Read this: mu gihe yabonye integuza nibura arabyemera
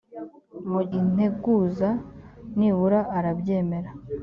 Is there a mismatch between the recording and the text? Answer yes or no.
yes